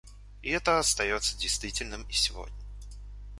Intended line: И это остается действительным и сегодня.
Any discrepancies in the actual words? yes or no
no